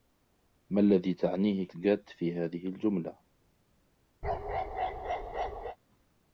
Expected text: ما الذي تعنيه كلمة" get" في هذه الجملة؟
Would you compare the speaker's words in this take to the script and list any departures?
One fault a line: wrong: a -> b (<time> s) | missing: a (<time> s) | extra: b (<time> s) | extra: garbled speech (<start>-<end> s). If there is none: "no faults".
missing: كلمة (1.7 s)